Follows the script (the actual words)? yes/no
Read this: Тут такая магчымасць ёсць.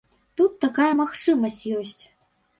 yes